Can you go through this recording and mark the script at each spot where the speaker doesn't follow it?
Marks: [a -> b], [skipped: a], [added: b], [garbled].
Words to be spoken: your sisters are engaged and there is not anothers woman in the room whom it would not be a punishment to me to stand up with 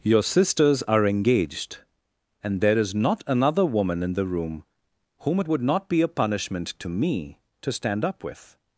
your sisters are engaged and there is not [anothers -> another] woman in the room whom it would not be a punishment to me to stand up with